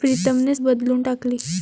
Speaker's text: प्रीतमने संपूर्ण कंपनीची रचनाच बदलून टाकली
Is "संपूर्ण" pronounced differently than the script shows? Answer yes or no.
yes